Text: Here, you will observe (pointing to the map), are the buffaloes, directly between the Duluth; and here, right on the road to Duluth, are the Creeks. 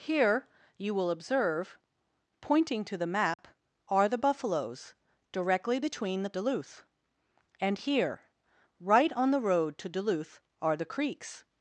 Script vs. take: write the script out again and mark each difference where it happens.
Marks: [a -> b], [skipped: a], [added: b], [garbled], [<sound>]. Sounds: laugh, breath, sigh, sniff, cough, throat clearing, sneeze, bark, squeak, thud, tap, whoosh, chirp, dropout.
Here, you will observe (pointing to the map), [dropout] are the buffaloes, directly between the Duluth; and here, right on the road to Duluth, are the Creeks.